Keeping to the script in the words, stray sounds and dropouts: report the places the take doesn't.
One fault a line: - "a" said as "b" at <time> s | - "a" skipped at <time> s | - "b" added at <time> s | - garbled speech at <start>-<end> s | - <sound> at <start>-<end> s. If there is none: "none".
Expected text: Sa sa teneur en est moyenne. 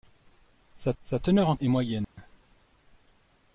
- dropout at 2.0-2.2 s